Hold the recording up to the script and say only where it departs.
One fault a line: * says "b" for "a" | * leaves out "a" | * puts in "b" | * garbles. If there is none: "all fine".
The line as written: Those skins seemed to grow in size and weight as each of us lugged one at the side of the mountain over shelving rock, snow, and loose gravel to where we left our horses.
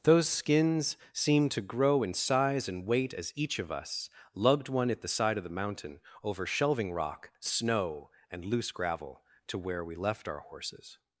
all fine